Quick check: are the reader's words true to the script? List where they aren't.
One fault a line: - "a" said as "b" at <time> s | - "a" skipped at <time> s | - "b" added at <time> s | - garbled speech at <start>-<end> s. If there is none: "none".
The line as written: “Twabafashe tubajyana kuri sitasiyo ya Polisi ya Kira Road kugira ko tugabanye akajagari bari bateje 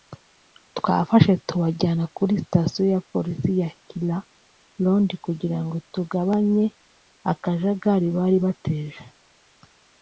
- "ko" said as "ngo" at 5.6 s